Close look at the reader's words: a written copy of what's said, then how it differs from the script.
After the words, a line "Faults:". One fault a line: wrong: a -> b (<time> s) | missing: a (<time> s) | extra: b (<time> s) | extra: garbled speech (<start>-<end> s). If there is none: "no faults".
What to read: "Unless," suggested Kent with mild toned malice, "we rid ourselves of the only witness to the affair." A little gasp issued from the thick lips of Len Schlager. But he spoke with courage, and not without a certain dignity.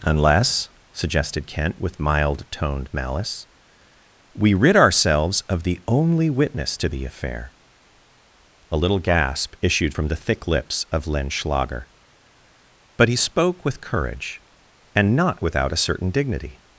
"Unless," suggested Kent with mild toned malice, "we rid ourselves of the only witness to the affair." A little gasp issued from the thick lips of Len Schlager. But he spoke with courage, and not without a certain dignity.
Faults:
no faults